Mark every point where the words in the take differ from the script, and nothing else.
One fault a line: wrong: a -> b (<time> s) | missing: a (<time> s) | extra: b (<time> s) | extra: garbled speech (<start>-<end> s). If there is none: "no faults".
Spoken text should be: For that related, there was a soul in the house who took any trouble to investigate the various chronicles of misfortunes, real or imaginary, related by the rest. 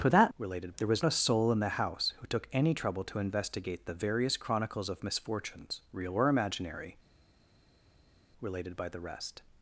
no faults